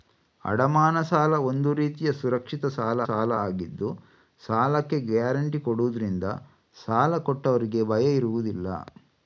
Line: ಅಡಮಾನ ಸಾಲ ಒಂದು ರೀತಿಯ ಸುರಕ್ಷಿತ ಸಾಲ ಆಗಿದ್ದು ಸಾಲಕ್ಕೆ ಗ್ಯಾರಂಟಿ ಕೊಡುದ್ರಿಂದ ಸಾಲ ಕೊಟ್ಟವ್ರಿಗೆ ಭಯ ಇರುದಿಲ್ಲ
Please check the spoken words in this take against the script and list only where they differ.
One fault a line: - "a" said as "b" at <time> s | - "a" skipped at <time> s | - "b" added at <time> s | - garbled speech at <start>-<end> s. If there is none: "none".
- "ಸಾಲ" added at 3.1 s